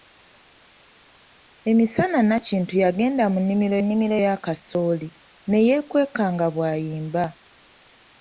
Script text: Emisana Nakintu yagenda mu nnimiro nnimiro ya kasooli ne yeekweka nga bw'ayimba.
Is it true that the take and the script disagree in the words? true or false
false